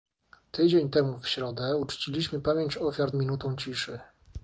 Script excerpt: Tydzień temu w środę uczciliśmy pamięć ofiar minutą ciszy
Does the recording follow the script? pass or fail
pass